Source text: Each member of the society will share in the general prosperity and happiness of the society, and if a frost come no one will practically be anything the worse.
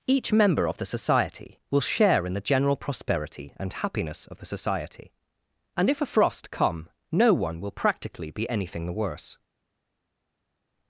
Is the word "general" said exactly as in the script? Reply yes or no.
yes